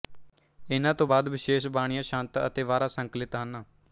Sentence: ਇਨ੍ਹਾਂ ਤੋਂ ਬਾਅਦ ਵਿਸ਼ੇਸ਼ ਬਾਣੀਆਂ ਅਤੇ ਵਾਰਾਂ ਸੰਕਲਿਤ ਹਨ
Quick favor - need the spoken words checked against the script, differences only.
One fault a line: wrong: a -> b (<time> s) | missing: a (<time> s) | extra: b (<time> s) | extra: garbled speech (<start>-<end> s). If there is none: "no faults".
extra: ਛੰਤ (2.0 s)